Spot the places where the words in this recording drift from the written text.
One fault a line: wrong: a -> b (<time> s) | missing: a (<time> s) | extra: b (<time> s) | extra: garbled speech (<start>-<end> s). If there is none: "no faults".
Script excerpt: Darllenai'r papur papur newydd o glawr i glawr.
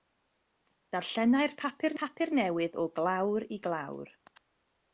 no faults